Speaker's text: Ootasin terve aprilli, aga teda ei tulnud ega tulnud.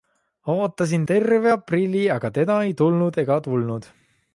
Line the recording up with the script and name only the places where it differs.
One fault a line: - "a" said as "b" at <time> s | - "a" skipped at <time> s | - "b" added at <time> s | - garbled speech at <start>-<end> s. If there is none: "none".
none